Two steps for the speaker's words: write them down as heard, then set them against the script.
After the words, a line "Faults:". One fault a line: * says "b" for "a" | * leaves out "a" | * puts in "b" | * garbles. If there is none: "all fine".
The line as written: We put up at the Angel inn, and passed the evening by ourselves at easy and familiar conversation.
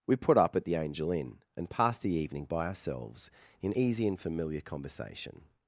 We put up at the Angel inn, and passed the evening by ourselves in easy and familiar conversation.
Faults:
* says "in" for "at"